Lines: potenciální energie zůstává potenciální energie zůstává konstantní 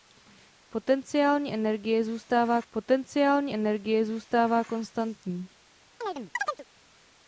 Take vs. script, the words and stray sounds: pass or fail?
fail